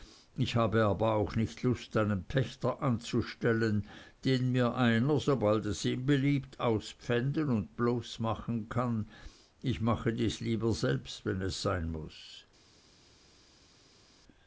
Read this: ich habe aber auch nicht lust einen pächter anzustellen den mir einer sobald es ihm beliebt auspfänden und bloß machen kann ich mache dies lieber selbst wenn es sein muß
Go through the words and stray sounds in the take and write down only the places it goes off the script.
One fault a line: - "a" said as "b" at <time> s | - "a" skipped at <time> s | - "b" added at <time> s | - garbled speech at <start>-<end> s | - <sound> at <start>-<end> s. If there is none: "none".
none